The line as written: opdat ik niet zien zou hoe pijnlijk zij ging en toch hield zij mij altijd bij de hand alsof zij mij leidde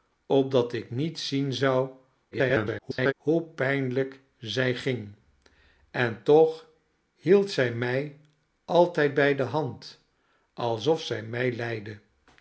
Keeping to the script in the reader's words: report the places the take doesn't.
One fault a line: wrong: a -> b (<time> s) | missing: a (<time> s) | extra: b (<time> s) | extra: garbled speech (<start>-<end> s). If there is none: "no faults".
extra: garbled speech (2.3-3.1 s)